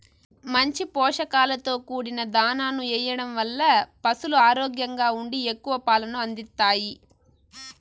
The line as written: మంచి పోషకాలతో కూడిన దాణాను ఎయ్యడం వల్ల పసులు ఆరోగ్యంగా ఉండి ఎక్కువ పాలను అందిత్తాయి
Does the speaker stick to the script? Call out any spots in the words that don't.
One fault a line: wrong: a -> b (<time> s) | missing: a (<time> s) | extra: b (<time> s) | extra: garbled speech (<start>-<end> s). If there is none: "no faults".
no faults